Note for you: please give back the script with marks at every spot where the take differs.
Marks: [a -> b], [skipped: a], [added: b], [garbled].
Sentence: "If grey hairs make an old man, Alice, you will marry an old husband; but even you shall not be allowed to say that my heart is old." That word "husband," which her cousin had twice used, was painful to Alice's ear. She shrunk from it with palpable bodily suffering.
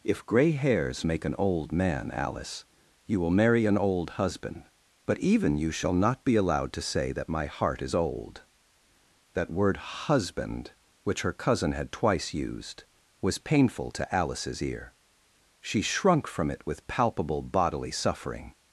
"If grey hairs make an old man, Alice, you will marry an old husband; but even you shall not be allowed to say that my heart is old." That word "husband," which her cousin had twice used, was painful to Alice's ear. She shrunk from it with palpable bodily suffering.